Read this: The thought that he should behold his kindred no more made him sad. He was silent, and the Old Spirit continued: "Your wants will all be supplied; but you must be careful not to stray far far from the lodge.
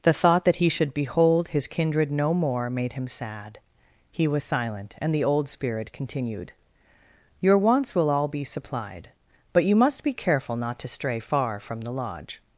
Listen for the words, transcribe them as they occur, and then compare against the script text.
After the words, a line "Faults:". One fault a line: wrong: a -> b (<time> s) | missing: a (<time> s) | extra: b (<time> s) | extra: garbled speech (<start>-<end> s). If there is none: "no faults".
The thought that he should behold his kindred no more made him sad. He was silent, and the Old Spirit continued: "Your wants will all be supplied; but you must be careful not to stray far from the lodge.
Faults:
missing: far (11.6 s)